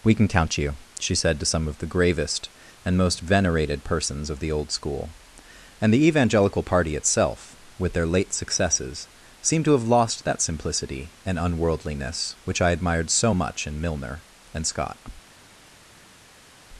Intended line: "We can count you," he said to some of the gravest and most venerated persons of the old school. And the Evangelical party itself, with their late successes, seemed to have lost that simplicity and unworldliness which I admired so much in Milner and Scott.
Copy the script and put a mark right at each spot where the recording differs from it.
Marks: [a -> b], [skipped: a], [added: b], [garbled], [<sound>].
"We can count you," [he -> she] said to some of the gravest and most venerated persons of the old school. And the Evangelical party itself, with their late successes, seemed to have lost that simplicity and unworldliness which I admired so much in Milner and Scott.